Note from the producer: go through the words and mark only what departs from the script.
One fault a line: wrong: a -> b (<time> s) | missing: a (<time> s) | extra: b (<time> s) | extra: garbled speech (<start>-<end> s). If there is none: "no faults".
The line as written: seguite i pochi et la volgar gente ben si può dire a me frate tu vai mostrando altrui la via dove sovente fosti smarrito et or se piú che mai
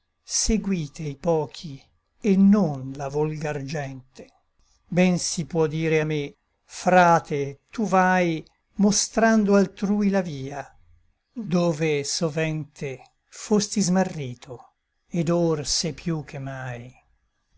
extra: non (2.4 s)